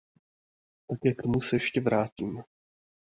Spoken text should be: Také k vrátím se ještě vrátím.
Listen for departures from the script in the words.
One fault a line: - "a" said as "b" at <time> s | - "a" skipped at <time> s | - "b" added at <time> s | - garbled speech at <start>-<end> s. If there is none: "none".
- "vrátím" said as "tomu" at 1.2 s